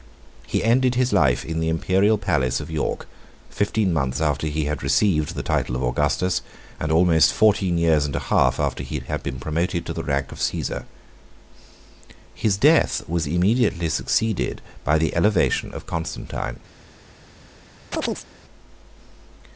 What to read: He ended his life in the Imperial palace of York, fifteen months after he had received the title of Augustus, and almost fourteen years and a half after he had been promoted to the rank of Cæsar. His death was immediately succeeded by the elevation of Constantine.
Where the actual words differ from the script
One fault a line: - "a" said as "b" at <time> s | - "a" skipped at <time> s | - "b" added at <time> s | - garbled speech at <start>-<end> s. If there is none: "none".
none